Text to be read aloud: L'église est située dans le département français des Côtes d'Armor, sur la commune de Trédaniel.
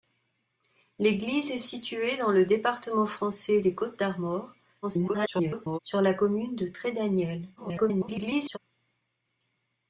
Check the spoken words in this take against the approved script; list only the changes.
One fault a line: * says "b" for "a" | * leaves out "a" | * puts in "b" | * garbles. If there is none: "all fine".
* garbles
* garbles